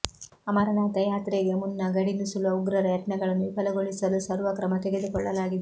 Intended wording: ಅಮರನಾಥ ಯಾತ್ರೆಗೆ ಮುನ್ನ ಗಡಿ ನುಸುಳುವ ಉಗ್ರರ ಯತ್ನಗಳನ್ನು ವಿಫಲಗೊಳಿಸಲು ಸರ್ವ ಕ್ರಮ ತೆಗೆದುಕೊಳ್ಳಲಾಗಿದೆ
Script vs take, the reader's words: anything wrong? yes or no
no